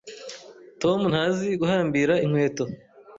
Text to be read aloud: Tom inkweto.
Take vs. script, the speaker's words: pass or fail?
fail